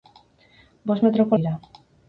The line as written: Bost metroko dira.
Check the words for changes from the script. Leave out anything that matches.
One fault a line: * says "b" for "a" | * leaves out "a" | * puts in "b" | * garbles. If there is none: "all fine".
all fine